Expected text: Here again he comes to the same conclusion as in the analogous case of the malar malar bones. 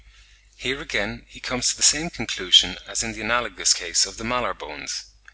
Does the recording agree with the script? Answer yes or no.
no